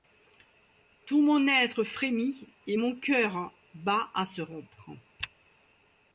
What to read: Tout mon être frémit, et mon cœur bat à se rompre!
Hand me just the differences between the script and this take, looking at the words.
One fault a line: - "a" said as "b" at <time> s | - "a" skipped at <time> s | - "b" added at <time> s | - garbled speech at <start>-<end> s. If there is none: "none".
none